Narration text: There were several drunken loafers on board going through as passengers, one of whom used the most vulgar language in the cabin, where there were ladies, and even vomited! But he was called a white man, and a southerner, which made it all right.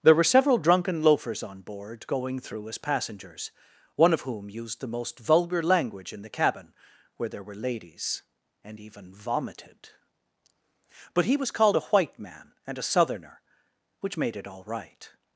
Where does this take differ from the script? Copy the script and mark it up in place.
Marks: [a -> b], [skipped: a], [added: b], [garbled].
There were several drunken loafers on board going through as passengers, one of whom used the most vulgar language in the cabin, where there were ladies, and even vomited! But he was called a white man, and a southerner, which made it all right.